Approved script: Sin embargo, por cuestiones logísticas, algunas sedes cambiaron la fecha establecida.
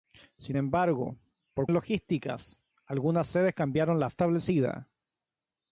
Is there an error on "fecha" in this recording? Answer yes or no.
yes